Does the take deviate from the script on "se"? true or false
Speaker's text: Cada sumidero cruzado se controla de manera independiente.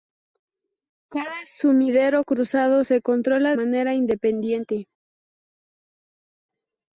false